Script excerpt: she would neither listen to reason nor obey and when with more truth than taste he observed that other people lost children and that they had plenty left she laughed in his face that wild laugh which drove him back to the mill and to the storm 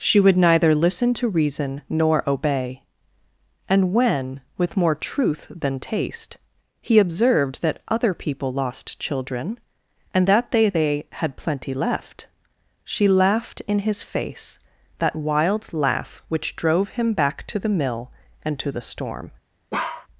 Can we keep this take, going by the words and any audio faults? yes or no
no